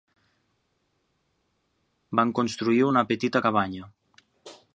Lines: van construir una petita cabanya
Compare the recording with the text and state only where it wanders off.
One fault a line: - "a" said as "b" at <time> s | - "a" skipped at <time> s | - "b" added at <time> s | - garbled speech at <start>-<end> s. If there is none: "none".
none